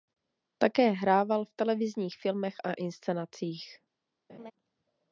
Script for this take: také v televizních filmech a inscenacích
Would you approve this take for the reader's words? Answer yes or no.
no